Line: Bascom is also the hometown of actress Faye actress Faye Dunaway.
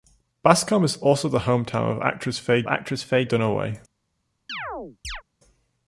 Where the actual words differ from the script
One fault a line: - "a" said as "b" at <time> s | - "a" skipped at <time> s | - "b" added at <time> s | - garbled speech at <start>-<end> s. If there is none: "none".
none